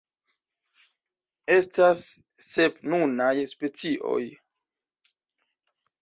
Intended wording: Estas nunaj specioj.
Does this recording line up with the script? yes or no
no